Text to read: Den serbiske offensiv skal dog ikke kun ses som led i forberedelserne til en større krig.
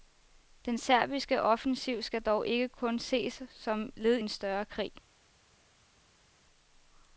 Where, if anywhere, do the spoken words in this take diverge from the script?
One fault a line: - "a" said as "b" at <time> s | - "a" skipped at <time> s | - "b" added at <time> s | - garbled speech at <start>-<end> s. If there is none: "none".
- "i forberedelserne til" skipped at 4.2 s